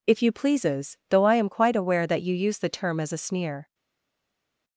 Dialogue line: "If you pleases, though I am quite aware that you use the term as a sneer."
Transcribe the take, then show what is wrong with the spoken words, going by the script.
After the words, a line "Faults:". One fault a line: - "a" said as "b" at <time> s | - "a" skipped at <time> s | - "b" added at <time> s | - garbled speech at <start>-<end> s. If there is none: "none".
"If you pleases, though I am quite aware that you use the term as a sneer."
Faults:
none